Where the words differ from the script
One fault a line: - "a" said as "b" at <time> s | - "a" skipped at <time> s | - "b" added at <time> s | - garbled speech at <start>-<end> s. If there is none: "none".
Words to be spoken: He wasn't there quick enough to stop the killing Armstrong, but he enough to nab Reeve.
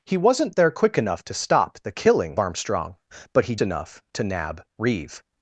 none